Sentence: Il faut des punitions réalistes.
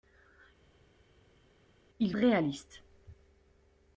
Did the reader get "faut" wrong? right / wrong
wrong